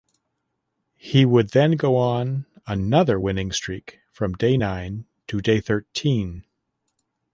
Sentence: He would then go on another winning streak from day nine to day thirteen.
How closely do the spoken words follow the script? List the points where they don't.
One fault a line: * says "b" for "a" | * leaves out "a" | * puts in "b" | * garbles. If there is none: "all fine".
all fine